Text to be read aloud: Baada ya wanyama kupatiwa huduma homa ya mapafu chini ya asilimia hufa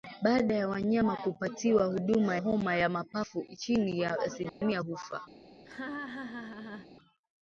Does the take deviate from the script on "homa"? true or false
false